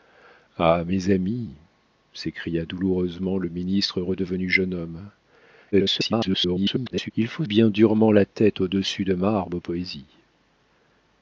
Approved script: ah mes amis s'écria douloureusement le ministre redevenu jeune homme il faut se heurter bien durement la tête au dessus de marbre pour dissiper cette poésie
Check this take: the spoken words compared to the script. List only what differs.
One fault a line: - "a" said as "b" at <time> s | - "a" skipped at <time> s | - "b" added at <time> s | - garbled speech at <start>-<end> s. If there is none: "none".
- garbled speech at 5.7-7.1 s
- "se heurter" skipped at 7.4 s
- "pour dissiper cette" skipped at 9.6 s